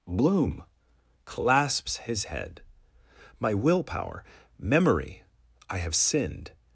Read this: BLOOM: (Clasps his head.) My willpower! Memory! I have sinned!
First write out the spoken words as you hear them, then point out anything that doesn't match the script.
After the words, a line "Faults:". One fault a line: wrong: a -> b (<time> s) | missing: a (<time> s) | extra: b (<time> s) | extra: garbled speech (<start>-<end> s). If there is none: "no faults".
BLOOM: (Clasps his head.) My willpower! Memory! I have sinned!
Faults:
no faults